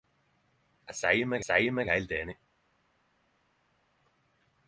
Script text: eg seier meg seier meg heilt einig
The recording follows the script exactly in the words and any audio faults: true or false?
true